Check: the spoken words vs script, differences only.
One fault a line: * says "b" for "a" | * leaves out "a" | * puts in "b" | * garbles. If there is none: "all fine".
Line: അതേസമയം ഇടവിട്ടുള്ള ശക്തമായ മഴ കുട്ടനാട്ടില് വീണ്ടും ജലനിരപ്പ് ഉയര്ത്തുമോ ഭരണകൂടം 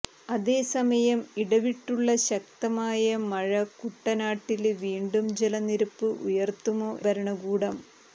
all fine